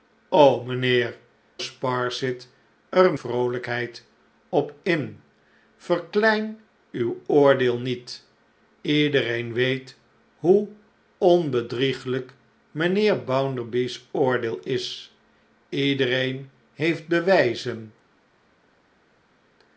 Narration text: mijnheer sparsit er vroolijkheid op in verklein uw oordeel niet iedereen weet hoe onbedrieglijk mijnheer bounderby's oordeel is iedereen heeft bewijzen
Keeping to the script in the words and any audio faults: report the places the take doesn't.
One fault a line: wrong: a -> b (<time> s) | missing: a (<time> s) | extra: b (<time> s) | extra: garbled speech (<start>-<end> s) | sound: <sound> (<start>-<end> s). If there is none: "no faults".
no faults